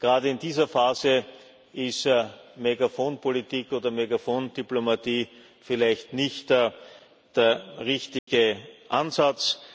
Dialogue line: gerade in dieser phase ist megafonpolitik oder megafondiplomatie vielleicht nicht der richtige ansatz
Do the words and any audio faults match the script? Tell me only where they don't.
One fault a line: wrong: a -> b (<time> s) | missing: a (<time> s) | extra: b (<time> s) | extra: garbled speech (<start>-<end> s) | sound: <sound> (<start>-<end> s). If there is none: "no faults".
sound: dropout (8.2-8.3 s)